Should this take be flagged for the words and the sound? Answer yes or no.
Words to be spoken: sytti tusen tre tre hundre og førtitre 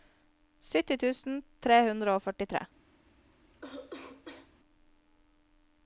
yes